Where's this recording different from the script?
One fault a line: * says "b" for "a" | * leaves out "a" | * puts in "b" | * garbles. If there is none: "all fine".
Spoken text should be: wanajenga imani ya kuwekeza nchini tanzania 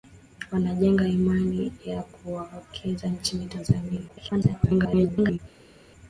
* garbles